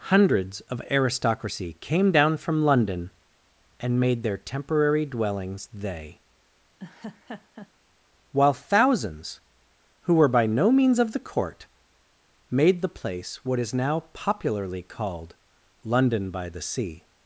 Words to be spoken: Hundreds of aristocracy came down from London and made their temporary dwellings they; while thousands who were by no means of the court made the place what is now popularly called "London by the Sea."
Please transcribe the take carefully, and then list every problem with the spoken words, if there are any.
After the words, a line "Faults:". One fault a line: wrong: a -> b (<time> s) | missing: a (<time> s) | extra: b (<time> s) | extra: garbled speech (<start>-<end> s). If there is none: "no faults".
Hundreds of aristocracy came down from London and made their temporary dwellings they; while thousands who were by no means of the court made the place what is now popularly called "London by the Sea."
Faults:
no faults